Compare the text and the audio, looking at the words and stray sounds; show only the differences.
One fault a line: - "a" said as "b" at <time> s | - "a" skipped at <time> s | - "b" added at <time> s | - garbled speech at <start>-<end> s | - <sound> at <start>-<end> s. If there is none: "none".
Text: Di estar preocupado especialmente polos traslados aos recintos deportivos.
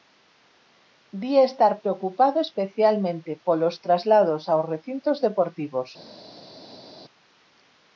none